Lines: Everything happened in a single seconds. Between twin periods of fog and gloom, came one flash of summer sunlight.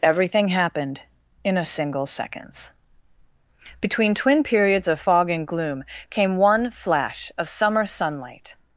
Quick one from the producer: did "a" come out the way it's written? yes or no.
yes